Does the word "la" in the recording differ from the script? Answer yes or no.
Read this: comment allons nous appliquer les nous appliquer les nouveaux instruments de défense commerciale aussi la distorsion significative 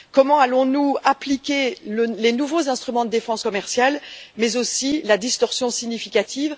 no